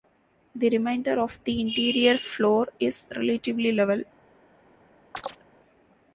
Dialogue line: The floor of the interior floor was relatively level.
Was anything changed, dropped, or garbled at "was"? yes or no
yes